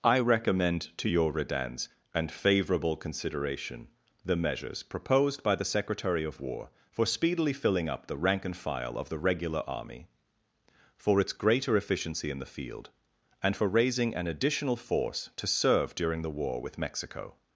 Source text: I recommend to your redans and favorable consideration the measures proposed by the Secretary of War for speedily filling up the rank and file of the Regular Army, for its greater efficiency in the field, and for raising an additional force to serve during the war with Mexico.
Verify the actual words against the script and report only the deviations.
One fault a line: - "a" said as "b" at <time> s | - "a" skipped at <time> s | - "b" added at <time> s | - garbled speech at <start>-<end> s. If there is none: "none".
none